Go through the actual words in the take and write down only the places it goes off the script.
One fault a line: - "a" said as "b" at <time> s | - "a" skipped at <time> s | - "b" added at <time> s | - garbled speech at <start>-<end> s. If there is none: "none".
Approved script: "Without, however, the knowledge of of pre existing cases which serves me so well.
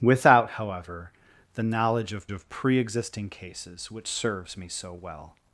none